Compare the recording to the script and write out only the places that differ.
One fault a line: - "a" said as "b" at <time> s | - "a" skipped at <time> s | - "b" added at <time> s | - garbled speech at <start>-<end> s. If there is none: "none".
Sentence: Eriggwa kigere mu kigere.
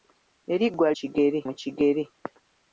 none